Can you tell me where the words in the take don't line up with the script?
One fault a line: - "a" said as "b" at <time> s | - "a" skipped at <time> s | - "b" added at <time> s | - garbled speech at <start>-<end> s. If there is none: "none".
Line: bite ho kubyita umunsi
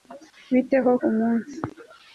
- "kubyita" skipped at 0.9 s